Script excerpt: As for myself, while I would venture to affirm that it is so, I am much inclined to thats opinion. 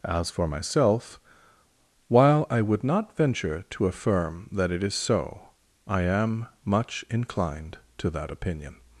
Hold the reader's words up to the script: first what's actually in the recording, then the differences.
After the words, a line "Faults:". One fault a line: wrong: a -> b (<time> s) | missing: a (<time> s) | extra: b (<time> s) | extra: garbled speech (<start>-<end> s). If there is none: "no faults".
As for myself, while I would not venture to affirm that it is so, I am much inclined to that opinion.
Faults:
extra: not (2.8 s)
wrong: thats -> that (8.1 s)